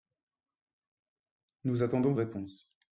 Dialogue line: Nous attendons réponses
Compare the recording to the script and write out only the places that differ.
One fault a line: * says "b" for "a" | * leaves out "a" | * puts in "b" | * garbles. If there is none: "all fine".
all fine